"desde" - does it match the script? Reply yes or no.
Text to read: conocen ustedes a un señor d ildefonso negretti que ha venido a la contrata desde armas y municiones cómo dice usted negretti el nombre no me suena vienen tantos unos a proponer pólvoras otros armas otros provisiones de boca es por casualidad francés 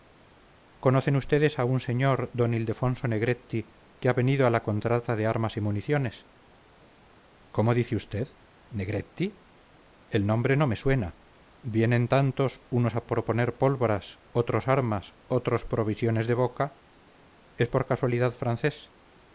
no